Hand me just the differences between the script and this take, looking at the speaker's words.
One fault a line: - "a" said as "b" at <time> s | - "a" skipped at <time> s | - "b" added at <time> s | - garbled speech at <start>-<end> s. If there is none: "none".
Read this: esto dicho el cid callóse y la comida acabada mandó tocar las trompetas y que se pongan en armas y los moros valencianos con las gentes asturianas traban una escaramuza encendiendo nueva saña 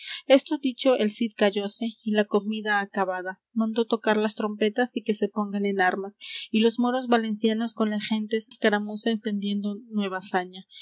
- "asturianas traban una" skipped at 8.5 s